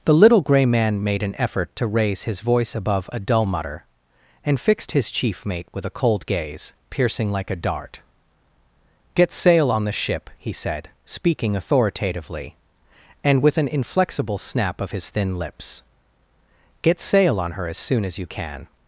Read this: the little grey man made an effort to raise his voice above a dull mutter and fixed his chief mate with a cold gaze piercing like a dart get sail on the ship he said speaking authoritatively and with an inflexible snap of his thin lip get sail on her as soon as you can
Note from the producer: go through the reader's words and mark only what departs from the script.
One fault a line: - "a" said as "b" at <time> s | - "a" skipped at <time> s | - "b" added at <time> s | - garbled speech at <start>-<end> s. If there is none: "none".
- "lip" said as "lips" at 15.4 s